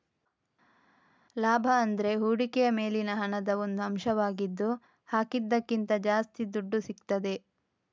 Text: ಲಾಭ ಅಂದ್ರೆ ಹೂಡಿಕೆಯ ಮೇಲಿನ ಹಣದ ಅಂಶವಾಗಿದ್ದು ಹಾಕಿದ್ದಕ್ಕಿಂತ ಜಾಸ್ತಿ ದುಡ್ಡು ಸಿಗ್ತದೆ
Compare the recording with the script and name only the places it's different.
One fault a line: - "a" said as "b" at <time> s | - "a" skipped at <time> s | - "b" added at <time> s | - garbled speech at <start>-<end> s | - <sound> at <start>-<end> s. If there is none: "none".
- "ಒಂದು" added at 3.6 s